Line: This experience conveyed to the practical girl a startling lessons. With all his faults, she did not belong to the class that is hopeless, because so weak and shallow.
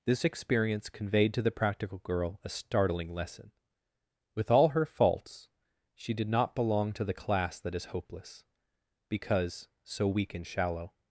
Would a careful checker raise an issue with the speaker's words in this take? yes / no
yes